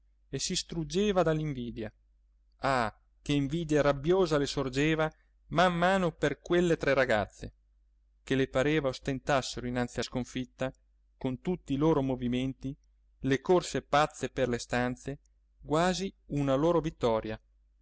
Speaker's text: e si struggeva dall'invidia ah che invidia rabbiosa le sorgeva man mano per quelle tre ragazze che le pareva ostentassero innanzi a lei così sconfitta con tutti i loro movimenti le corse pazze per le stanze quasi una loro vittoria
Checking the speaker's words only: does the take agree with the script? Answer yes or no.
no